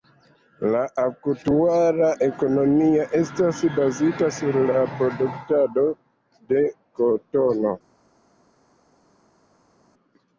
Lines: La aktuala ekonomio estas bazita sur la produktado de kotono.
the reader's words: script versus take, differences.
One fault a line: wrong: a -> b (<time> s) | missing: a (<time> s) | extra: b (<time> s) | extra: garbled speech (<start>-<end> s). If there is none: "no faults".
no faults